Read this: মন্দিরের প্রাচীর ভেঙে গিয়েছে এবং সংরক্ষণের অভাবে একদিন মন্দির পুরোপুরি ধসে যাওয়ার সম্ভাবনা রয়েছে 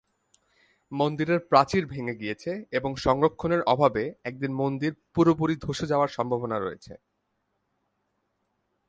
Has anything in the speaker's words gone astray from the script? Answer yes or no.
no